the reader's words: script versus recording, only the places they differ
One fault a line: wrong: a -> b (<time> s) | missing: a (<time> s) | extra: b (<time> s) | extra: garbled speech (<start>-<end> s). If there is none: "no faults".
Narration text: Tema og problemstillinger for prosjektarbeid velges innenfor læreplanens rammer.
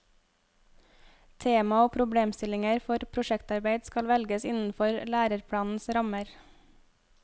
extra: skal (3.9 s)